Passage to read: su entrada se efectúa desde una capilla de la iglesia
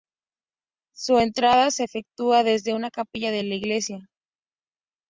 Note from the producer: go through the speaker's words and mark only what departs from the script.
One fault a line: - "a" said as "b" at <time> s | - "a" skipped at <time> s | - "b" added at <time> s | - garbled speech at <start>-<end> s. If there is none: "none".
none